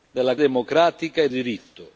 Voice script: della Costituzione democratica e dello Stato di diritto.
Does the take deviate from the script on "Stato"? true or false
true